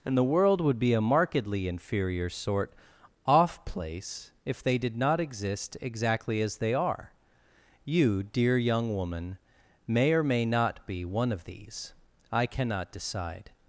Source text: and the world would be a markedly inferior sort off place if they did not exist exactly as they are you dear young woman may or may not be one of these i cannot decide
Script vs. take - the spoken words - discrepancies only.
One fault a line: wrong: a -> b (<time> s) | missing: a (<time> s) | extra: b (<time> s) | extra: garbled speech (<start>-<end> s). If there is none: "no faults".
no faults